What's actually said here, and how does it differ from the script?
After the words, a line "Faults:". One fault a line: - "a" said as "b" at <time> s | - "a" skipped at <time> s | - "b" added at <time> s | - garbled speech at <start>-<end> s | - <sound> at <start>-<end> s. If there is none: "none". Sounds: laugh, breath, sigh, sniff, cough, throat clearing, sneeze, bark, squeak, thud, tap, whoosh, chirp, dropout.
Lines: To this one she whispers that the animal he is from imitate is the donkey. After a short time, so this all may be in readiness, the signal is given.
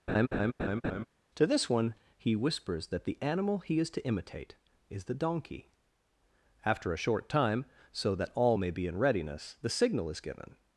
To this one he whispers that the animal he is to imitate is the donkey. After a short time, so that all may be in readiness, the signal is given.
Faults:
- laugh at 0.1-1.1 s
- "she" said as "he" at 2.2 s
- "from" said as "to" at 3.9 s
- "this" said as "that" at 8.1 s